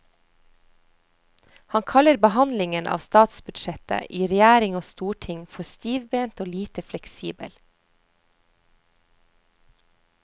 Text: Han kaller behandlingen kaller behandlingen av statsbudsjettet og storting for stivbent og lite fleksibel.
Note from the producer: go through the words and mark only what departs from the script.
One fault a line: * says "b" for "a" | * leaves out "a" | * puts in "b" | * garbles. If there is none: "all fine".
* says "av statsbudsjettet i regjering" for "kaller behandlingen av statsbudsjettet"